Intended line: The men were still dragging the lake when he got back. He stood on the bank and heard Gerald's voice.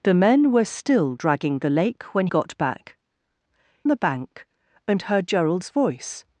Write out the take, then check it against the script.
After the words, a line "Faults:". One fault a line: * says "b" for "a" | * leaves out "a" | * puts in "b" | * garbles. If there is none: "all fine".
The men were still dragging the lake when got back. The bank and heard Gerald's voice.
Faults:
* leaves out "he"
* leaves out "He stood on"